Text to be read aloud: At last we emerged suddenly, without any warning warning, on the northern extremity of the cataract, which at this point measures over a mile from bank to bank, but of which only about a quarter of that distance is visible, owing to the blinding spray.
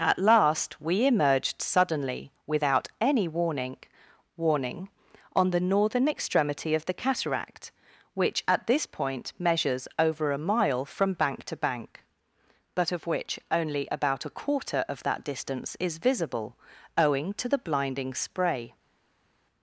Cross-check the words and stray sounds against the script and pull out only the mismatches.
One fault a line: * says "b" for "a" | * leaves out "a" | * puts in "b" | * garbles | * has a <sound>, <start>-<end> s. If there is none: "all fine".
all fine